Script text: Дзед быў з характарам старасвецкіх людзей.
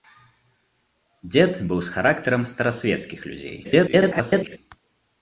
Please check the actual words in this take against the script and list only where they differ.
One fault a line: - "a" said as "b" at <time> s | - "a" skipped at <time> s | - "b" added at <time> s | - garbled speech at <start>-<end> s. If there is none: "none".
- garbled speech at 3.6-4.6 s